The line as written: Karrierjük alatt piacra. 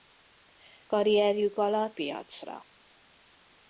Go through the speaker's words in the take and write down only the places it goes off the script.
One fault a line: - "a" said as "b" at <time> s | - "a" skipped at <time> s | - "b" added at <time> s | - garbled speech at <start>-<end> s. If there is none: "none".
none